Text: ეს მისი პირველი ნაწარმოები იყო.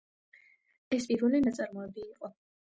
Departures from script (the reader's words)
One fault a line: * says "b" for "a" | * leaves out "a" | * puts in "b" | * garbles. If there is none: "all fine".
* leaves out "მისი"